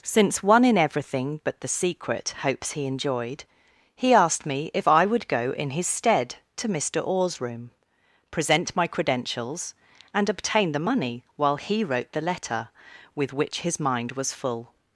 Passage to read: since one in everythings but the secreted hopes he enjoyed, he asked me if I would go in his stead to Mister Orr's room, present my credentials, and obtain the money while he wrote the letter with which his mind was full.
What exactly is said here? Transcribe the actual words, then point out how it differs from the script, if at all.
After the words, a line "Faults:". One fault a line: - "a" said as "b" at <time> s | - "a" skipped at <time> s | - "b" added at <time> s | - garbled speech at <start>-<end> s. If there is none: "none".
since one in everything but the secret hopes he enjoyed, he asked me if I would go in his stead to Mister Orr's room, present my credentials, and obtain the money while he wrote the letter with which his mind was full.
Faults:
- "everythings" said as "everything" at 0.8 s
- "secreted" said as "secret" at 1.7 s